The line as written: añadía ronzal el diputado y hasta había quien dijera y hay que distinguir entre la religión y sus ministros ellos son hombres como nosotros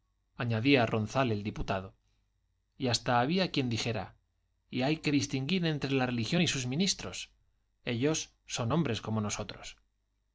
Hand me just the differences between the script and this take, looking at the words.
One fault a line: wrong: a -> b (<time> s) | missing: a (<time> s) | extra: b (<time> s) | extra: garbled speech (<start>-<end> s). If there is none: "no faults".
no faults